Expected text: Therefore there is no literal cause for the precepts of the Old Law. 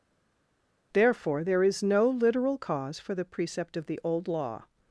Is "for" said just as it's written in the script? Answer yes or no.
yes